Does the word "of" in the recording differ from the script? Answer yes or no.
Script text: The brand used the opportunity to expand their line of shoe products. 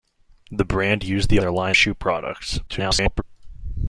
yes